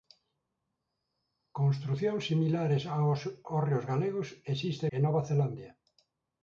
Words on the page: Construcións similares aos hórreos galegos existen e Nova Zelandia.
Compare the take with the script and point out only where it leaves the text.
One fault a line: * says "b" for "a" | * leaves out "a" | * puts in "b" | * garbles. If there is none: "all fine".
all fine